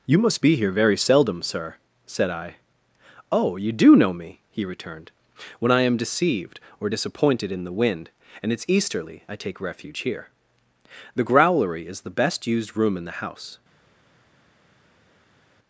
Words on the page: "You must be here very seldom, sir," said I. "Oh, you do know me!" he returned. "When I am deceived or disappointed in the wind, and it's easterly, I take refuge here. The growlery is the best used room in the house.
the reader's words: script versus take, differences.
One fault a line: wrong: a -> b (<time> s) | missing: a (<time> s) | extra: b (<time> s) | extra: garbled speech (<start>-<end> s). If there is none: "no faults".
no faults